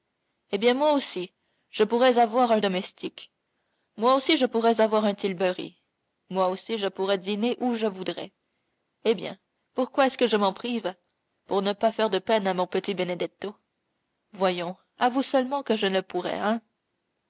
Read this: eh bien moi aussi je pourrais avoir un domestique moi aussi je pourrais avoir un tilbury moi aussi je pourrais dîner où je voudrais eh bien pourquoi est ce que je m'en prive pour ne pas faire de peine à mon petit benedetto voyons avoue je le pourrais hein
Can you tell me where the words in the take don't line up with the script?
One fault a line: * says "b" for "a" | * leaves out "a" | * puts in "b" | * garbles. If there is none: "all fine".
* puts in "seulement que"